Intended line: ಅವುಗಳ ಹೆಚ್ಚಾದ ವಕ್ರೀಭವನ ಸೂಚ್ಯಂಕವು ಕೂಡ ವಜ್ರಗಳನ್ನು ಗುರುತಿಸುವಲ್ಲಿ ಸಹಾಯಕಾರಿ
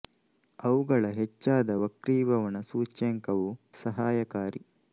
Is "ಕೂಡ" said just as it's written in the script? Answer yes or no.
no